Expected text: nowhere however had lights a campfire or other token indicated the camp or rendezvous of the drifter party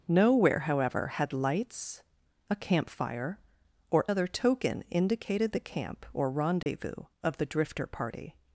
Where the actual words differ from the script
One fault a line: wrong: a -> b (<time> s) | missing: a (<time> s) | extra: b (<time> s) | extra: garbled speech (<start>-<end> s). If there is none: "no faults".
no faults